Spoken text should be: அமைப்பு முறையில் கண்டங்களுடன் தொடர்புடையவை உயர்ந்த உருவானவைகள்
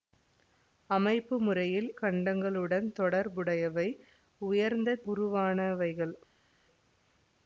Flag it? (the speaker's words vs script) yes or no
no